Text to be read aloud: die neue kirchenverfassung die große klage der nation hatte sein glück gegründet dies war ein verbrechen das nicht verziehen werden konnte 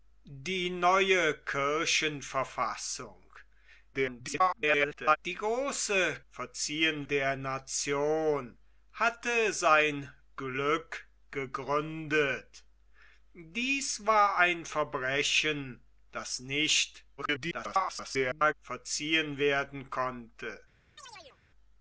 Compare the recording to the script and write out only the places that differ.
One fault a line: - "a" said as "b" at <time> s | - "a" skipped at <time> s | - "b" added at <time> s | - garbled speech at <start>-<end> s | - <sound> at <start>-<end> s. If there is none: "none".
- garbled speech at 3.9-5.2 s
- "klage" said as "verziehen" at 6.3 s
- garbled speech at 17.2-18.5 s
- chirp at 21.0-21.4 s